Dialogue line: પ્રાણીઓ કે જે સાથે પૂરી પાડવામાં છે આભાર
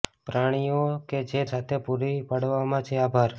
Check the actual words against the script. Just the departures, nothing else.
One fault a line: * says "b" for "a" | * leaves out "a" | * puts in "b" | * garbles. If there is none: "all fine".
all fine